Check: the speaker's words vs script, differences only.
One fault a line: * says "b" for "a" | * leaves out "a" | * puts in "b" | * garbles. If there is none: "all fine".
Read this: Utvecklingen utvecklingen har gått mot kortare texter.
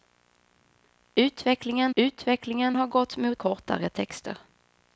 all fine